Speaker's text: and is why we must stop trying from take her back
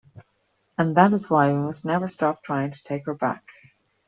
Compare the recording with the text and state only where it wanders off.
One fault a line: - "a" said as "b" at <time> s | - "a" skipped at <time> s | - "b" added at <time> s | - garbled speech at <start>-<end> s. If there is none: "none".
- "that" added at 0.9 s
- "never" added at 1.9 s
- "from" said as "to" at 2.7 s